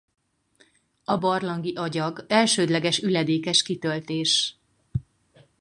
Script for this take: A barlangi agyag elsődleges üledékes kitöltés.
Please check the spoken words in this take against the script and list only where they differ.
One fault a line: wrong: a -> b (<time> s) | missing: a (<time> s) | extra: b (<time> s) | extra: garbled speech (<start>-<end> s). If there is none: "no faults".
no faults